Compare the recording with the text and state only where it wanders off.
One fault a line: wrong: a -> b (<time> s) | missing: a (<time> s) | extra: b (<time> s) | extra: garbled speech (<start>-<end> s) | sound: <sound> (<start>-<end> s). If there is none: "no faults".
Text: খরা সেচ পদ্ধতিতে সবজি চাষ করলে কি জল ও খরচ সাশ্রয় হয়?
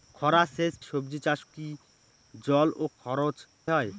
missing: পদ্ধতিতে (0.7 s)
missing: করলে (1.4 s)
missing: সাশ্রয় (3.4 s)